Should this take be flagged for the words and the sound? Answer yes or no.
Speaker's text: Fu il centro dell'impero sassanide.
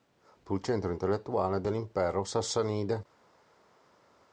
yes